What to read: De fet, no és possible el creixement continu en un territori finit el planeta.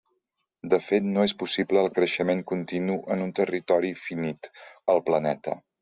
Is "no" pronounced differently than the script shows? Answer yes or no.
no